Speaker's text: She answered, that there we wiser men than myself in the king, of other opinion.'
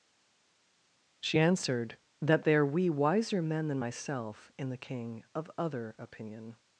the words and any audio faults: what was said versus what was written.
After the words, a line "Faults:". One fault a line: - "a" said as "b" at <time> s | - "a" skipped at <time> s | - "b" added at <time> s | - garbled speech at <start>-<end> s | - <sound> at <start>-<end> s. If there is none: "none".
She answered, that there we wiser men than myself in the king, of other opinion.'
Faults:
none